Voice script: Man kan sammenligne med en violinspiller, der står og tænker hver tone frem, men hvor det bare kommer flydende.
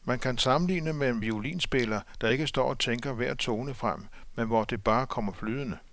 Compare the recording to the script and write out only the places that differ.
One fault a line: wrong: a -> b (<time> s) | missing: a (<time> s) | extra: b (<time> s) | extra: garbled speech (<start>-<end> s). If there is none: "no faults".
extra: ikke (2.3 s)